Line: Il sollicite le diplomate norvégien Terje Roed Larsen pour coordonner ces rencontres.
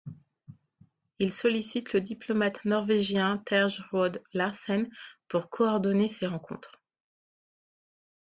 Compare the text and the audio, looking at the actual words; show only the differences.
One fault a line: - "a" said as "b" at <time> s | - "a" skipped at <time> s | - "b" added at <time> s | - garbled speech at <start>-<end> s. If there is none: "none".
none